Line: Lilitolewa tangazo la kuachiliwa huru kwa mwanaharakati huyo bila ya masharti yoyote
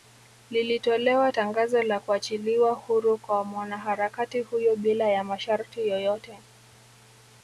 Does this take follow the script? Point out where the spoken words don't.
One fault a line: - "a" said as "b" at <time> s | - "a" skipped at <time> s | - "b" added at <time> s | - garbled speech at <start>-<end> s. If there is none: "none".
none